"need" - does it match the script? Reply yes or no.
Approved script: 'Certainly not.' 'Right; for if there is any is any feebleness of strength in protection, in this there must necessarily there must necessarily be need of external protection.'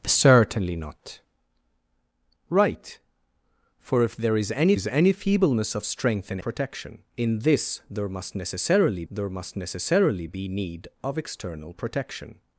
yes